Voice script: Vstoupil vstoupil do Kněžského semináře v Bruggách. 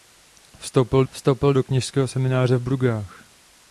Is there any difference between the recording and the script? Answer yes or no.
no